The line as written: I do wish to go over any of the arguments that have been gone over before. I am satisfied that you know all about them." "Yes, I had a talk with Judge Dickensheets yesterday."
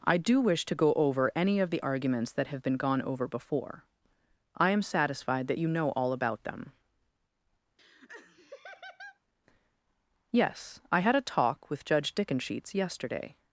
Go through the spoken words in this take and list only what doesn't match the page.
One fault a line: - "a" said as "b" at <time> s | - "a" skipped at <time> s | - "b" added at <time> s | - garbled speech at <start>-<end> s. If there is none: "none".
none